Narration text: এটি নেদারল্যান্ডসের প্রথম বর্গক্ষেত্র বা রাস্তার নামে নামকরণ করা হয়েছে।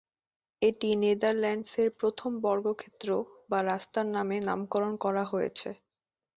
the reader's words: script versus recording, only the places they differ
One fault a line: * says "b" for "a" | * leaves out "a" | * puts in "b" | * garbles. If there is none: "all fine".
all fine